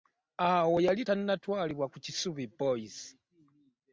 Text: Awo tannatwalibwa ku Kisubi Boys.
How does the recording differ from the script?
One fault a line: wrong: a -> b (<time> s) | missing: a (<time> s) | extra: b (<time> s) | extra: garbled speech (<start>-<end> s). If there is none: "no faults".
extra: yali (0.9 s)